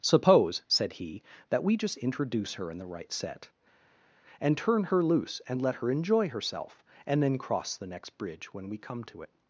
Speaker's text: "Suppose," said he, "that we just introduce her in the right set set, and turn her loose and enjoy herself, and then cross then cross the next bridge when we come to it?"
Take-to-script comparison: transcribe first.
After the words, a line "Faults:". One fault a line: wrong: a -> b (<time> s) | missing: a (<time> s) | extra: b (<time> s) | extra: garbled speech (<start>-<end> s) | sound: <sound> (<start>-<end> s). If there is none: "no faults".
"Suppose," said he, "that we just introduce her in the right set, and turn her loose and let her enjoy herself, and then cross the next bridge when we come to it?"
Faults:
missing: set (3.5 s)
extra: let her (5.6 s)
missing: then cross (7.8 s)